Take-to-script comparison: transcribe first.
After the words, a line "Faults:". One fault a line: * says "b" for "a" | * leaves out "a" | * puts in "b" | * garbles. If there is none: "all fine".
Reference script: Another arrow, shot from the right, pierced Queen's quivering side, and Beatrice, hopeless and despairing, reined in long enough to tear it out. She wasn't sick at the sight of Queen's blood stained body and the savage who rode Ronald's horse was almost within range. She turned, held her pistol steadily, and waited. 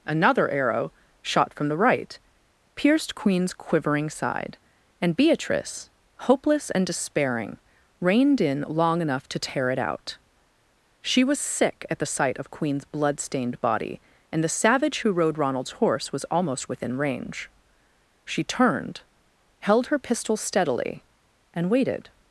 Another arrow, shot from the right, pierced Queen's quivering side, and Beatrice, hopeless and despairing, reined in long enough to tear it out. She was sick at the sight of Queen's blood stained body and the savage who rode Ronald's horse was almost within range. She turned, held her pistol steadily, and waited.
Faults:
* says "was" for "wasn't"